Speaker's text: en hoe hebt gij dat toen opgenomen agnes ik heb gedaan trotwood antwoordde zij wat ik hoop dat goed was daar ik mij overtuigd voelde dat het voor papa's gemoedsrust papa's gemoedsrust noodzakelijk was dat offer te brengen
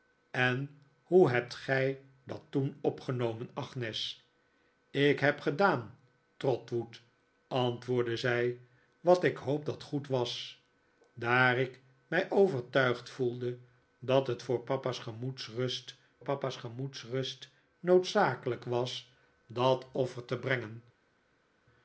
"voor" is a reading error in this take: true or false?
false